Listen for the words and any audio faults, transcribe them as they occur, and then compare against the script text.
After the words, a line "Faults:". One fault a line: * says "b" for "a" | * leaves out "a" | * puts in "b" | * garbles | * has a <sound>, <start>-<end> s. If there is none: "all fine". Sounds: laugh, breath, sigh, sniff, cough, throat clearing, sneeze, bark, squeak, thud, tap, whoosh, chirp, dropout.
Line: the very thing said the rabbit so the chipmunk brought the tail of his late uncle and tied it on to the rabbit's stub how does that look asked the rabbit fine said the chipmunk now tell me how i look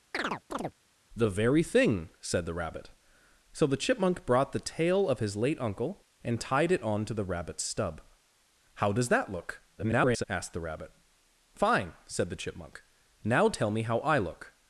the very thing said the rabbit so the chipmunk brought the tail of his late uncle and tied it on to the rabbit's stub how does that look [garbled] asked the rabbit fine said the chipmunk now tell me how i look
Faults:
* has a chirp, 0.1-0.7 s
* garbles